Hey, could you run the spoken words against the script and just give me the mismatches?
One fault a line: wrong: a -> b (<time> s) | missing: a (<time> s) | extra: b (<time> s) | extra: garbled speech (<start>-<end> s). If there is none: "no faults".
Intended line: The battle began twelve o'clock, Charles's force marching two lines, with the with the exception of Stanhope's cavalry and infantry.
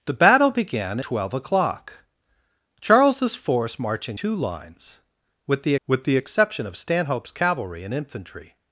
no faults